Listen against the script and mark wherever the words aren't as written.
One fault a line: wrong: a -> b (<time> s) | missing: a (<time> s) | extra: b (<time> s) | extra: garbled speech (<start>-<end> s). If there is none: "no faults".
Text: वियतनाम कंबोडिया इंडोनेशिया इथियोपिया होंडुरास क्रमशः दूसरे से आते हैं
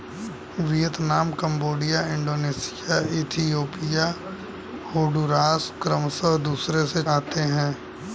no faults